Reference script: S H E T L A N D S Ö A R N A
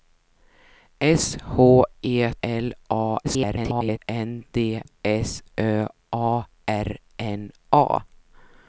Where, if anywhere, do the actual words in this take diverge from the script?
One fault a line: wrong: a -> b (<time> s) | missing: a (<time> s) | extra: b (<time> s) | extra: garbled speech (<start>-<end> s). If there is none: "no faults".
missing: T (2.3 s)
extra: garbled speech (3.2-4.0 s)